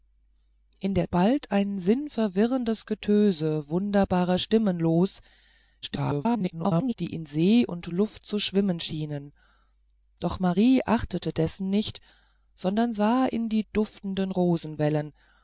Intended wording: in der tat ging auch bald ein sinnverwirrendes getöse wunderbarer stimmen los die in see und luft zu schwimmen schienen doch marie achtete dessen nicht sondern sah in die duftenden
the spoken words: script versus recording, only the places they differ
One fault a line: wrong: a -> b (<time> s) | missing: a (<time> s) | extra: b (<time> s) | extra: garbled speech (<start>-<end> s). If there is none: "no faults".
missing: tat ging auch (1.1 s)
extra: garbled speech (5.8-6.9 s)